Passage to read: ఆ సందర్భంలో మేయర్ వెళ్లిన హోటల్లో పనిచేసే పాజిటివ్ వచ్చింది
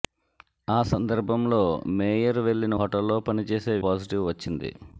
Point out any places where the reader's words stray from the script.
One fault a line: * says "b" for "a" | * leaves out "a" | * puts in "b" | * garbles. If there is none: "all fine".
all fine